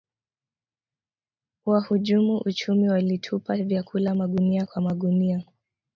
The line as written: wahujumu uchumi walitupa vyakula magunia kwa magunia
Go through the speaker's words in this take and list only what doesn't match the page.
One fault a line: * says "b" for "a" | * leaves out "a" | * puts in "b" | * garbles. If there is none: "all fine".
all fine